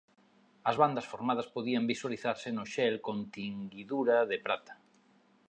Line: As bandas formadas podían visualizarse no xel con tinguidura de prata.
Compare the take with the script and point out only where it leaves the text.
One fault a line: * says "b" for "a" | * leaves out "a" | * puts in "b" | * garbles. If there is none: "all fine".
all fine